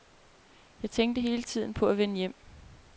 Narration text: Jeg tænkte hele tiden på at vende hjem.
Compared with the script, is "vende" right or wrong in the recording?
right